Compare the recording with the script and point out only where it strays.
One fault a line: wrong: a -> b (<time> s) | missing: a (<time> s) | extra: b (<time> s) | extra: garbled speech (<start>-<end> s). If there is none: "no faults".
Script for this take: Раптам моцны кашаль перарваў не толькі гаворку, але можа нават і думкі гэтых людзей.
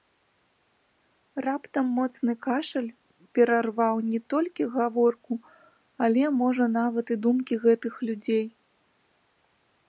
no faults